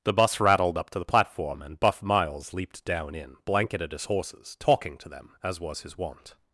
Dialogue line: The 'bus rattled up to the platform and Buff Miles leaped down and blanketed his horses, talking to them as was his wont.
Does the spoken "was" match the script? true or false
true